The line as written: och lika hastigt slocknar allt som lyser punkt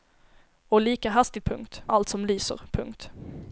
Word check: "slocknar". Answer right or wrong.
wrong